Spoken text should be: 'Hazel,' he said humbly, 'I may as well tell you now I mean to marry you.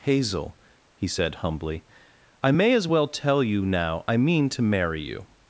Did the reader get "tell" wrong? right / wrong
right